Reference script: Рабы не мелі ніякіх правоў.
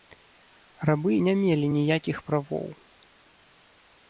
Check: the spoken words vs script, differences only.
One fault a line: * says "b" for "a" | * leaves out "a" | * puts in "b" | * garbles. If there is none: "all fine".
all fine